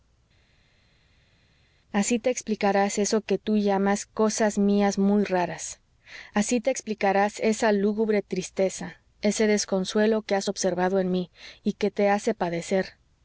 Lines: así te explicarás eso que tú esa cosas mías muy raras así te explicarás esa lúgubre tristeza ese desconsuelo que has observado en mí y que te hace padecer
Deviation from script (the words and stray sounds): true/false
true